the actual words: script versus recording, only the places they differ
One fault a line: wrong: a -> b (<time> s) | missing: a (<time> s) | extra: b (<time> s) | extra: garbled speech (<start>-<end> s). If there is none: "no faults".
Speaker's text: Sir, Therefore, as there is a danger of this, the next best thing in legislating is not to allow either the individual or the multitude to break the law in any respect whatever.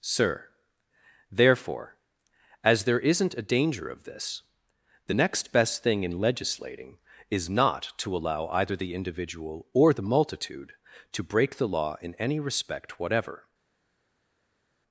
wrong: is -> isn't (3.0 s)